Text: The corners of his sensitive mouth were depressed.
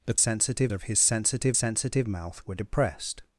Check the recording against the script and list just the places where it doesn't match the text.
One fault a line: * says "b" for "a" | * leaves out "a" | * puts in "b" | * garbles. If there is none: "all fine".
* says "sensitive" for "corners"
* puts in "sensitive"